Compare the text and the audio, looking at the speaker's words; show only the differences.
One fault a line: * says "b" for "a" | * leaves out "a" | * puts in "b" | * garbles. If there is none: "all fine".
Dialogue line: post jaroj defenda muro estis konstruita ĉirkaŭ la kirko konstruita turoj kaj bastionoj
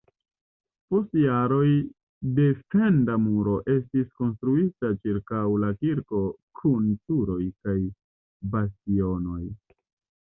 * says "kun" for "konstruita"